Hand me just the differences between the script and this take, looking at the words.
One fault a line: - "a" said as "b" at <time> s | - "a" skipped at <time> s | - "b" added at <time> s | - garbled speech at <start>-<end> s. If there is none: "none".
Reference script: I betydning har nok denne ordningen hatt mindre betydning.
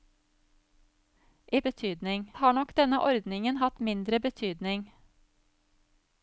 none